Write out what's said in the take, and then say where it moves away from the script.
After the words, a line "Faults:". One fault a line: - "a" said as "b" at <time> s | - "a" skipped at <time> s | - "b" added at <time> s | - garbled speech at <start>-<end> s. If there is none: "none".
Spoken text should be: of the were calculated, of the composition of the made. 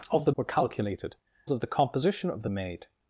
of the were calculated, of the composition of the made.
Faults:
none